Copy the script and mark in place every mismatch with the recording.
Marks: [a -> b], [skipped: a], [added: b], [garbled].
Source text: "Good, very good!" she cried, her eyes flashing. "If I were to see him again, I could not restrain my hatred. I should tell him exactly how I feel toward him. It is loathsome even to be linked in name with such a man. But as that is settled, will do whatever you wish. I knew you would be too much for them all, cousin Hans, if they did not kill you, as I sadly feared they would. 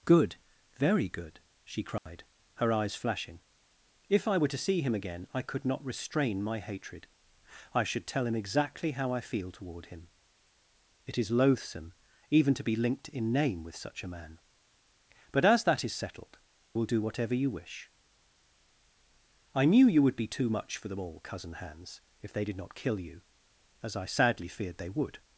"Good, very good!" she cried, her eyes flashing. "If I were to see him again, I could not restrain my hatred. I should tell him exactly how I feel toward him. It is loathsome even to be linked in name with such a man. But as that is settled, will do whatever you wish. I knew you would be too much for them all, cousin Hans, if they did not kill you, as I sadly feared they would.